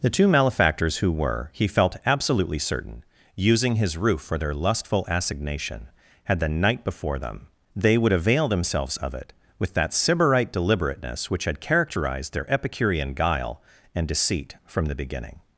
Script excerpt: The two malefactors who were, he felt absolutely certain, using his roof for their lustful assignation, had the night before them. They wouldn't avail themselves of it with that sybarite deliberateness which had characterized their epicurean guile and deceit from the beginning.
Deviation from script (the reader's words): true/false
true